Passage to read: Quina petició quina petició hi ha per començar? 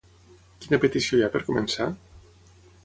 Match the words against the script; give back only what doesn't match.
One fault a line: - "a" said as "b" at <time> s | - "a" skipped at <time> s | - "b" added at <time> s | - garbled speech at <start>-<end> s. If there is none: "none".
- "quina petició" skipped at 1.2 s